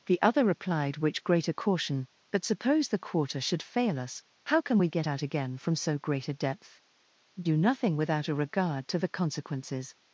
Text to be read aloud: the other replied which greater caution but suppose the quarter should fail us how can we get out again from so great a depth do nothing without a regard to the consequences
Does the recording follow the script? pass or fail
pass